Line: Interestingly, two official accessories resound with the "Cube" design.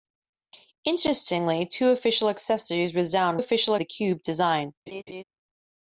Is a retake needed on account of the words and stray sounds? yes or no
yes